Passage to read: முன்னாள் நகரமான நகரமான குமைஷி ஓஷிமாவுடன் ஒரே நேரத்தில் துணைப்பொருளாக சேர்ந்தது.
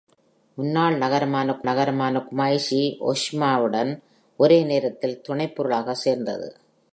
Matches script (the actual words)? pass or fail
pass